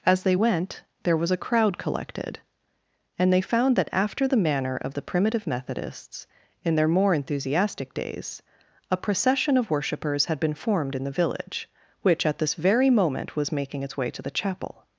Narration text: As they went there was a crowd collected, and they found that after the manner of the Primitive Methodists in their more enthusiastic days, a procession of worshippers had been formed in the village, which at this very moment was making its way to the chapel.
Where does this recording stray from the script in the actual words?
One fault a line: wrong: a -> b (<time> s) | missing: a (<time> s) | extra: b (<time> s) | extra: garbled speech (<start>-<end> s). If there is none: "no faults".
no faults